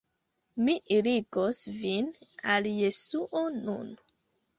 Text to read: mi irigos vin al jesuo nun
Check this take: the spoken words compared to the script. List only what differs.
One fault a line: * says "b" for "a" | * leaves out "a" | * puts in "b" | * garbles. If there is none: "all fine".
all fine